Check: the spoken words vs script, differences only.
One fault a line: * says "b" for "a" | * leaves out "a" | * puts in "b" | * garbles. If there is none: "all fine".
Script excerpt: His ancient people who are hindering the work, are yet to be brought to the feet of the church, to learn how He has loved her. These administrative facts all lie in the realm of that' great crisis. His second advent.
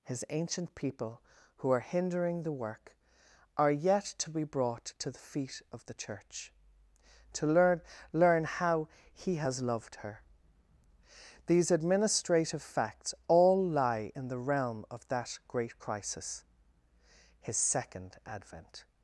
* puts in "learn"